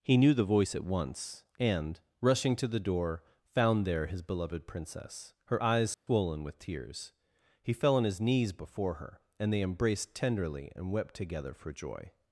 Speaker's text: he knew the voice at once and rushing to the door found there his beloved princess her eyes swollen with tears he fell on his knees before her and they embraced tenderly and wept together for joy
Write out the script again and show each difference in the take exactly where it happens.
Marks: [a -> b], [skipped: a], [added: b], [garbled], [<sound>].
he knew the voice at once and rushing to the door found there his beloved princess her eyes swollen [dropout] with tears he fell on his knees before her and they embraced tenderly and wept together for joy